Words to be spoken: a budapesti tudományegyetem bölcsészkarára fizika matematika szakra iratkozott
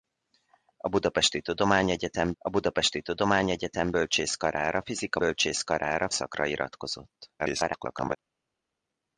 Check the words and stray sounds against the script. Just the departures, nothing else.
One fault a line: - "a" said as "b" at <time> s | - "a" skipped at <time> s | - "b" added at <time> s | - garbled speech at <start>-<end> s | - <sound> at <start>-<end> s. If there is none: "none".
- "a budapesti tudományegyetem" added at 2.4 s
- "matematika" said as "bölcsészkarára" at 5.2 s
- garbled speech at 7.4-8.2 s